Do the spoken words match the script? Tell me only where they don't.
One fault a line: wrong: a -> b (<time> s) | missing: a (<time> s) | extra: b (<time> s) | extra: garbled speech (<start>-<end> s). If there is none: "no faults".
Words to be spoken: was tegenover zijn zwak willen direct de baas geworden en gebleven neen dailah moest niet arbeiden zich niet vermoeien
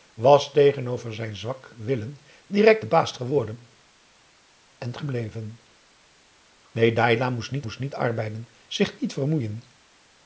extra: moest niet (7.6 s)